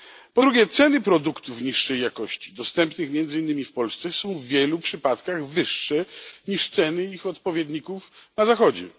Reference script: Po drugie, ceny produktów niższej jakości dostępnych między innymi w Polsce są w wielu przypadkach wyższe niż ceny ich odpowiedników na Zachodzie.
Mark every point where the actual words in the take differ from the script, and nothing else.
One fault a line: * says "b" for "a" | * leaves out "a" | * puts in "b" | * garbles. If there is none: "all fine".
all fine